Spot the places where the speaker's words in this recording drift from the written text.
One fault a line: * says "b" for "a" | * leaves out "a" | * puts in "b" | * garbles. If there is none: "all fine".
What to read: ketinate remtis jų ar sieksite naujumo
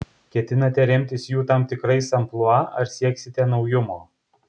* puts in "tam tikrais amplua"